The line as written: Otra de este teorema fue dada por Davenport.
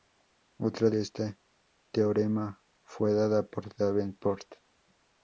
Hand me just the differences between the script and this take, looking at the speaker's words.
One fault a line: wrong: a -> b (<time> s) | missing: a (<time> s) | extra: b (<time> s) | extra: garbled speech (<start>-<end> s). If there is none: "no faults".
no faults